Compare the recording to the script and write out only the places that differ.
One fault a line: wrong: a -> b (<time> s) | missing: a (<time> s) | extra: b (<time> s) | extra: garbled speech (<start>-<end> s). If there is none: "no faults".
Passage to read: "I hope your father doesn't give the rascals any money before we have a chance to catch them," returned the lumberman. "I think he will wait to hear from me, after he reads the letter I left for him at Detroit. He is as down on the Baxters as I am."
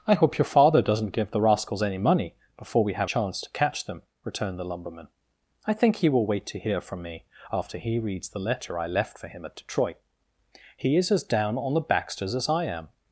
missing: a (3.1 s)